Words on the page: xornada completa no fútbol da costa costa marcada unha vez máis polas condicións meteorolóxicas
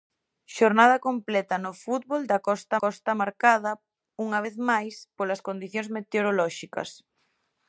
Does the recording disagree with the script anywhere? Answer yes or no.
no